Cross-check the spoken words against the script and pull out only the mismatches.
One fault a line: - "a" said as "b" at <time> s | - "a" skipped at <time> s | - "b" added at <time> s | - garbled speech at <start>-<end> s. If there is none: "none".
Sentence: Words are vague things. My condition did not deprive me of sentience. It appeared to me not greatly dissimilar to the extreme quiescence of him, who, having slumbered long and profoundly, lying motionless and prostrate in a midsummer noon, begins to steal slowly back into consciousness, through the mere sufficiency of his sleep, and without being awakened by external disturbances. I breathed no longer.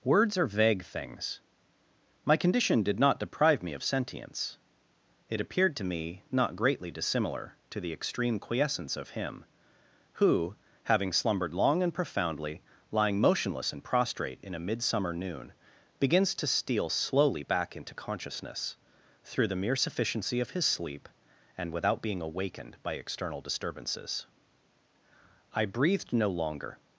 none